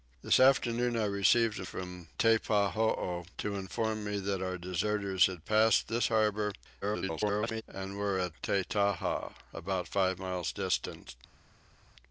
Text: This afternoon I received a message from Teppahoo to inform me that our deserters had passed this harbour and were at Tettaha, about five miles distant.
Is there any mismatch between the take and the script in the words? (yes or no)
yes